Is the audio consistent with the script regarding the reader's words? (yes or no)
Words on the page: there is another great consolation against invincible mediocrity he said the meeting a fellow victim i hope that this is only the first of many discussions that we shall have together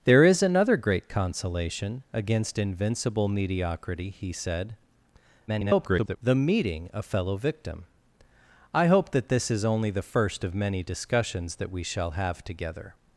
no